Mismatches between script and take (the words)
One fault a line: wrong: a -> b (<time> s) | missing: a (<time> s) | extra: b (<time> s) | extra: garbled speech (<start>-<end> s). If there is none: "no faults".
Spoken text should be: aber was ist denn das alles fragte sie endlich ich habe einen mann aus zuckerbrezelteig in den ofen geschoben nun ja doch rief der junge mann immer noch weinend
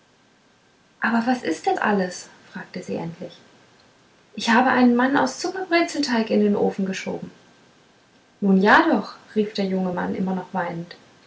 missing: das (1.8 s)